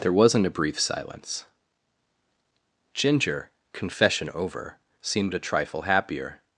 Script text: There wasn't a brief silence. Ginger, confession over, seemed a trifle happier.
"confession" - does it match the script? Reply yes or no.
yes